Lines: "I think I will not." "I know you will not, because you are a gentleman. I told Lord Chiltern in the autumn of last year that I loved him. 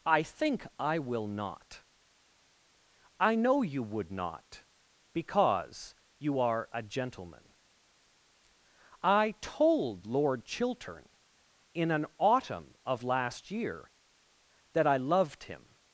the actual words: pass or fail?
fail